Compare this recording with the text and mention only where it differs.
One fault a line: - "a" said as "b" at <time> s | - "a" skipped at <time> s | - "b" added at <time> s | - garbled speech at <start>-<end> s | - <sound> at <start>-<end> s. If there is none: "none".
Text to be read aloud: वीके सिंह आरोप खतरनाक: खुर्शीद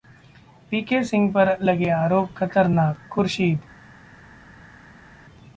- "पर लगे" added at 1.3 s